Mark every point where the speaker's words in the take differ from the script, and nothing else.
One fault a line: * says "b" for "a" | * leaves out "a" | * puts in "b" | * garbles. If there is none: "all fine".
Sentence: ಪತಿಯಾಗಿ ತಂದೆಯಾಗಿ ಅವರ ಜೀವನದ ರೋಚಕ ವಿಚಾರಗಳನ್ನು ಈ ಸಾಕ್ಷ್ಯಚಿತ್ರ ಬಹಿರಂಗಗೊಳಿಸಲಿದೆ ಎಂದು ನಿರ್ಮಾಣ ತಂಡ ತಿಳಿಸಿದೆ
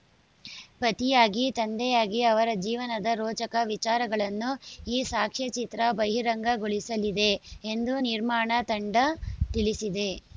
all fine